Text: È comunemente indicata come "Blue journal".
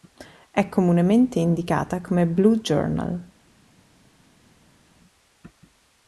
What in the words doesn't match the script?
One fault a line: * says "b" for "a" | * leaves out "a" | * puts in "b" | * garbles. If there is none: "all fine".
all fine